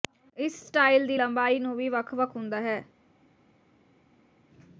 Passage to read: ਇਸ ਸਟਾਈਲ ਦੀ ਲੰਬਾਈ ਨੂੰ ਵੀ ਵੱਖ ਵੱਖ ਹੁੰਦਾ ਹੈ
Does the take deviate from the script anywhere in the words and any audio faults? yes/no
no